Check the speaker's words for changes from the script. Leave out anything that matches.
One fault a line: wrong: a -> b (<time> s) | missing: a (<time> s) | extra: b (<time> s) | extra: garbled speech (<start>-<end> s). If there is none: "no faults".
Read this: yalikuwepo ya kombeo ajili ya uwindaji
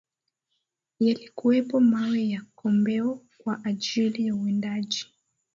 extra: mawe (1.8 s)
extra: kwa (3.4 s)